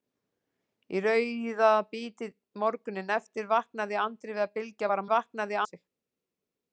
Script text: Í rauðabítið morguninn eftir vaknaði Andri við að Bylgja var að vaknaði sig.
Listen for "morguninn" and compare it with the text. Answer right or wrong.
right